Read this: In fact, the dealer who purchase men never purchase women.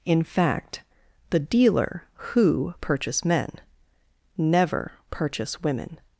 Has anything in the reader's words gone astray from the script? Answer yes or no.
no